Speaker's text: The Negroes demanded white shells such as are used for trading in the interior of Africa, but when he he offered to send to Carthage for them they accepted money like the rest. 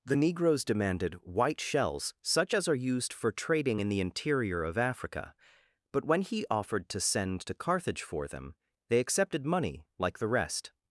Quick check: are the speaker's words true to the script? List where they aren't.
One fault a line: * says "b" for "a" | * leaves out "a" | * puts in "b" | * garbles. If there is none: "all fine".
* leaves out "he"